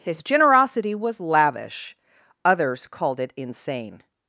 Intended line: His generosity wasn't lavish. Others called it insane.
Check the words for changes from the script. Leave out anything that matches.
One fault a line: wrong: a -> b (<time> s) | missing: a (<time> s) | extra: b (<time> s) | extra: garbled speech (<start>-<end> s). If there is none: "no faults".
wrong: wasn't -> was (0.9 s)